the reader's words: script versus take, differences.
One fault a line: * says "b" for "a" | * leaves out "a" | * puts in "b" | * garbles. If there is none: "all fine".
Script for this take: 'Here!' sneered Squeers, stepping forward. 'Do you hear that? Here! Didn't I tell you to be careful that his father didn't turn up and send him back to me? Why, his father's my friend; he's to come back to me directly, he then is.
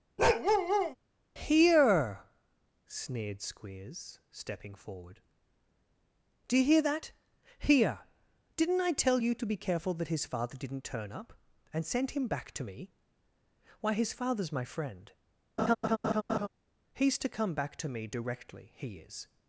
* leaves out "then"